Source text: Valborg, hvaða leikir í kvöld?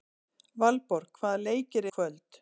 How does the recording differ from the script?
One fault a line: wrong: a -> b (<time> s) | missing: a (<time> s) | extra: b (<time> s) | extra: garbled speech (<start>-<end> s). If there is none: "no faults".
no faults